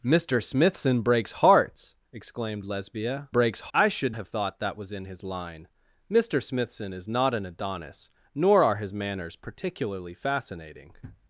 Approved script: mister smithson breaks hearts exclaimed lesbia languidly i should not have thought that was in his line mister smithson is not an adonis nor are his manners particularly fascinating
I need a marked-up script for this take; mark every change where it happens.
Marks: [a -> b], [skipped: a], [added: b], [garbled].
mister smithson breaks hearts exclaimed lesbia [languidly -> breaks] i should [skipped: not] have thought that was in his line mister smithson is not an adonis nor are his manners particularly fascinating